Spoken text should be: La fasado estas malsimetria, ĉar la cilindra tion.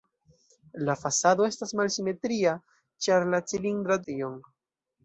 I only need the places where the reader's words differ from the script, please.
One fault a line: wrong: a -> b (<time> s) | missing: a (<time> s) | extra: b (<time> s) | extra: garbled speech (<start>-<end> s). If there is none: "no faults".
no faults